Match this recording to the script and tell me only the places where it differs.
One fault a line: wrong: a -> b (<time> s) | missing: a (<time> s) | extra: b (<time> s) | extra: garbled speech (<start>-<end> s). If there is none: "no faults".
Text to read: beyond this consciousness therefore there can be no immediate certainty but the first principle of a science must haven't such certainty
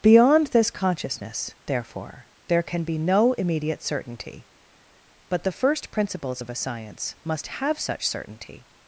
wrong: principle -> principles (5.9 s)
wrong: haven't -> have (7.5 s)